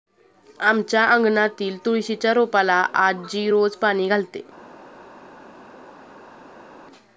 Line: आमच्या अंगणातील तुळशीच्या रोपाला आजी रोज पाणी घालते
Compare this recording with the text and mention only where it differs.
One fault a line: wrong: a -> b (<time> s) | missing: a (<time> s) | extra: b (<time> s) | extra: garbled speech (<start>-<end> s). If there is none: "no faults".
no faults